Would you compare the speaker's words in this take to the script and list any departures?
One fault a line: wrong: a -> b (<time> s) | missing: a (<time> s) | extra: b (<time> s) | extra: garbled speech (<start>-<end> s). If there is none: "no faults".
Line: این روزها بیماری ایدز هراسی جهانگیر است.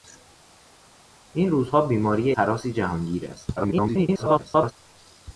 missing: ایدز (2.3 s)
extra: garbled speech (3.6-4.7 s)